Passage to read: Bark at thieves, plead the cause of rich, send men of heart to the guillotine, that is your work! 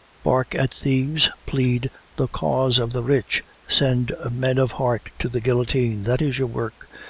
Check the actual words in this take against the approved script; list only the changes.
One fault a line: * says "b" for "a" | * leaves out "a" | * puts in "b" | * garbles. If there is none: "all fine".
* puts in "the"